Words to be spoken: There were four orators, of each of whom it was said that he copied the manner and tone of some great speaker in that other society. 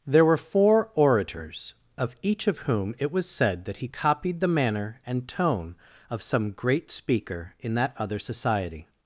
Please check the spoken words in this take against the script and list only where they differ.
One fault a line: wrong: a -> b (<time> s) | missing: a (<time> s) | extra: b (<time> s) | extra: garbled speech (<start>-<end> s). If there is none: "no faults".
no faults